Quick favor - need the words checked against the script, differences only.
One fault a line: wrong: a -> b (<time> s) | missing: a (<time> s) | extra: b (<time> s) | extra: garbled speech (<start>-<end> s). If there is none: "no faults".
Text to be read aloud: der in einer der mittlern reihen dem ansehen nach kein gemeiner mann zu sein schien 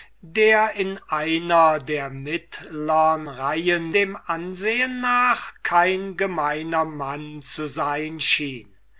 no faults